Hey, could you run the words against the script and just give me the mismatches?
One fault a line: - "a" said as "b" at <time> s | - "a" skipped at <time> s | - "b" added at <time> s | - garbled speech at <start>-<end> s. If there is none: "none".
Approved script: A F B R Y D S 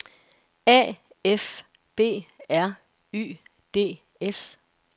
none